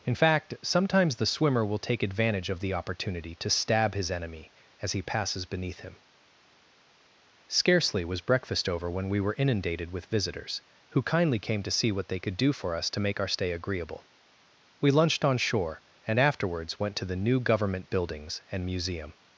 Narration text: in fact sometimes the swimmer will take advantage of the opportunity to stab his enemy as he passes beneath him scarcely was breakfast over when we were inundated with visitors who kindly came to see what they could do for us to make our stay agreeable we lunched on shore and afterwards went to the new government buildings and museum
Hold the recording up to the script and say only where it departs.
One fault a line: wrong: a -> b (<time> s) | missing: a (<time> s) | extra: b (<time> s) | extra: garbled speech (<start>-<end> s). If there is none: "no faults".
no faults